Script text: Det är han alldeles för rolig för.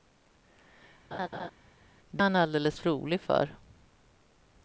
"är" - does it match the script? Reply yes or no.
no